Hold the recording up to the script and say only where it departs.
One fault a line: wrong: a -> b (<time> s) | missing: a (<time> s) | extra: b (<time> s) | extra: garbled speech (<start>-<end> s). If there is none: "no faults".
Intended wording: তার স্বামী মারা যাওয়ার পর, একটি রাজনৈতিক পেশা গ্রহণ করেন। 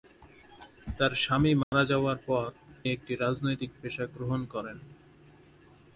no faults